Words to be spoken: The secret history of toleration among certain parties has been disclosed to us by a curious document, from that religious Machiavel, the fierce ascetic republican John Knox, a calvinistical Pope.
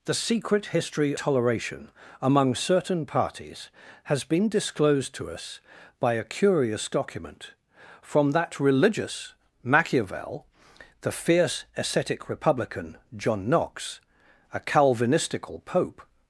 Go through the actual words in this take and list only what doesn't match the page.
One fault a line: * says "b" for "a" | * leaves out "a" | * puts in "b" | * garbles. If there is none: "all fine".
* leaves out "of"